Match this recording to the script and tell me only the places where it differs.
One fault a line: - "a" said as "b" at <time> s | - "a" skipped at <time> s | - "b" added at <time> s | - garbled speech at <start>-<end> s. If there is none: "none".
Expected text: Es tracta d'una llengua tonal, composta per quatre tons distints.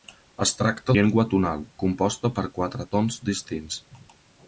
- "d'una" skipped at 0.9 s